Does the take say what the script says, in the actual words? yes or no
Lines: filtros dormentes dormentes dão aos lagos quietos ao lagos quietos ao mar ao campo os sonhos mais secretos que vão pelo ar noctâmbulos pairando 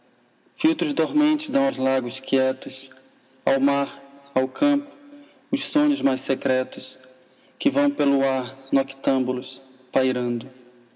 no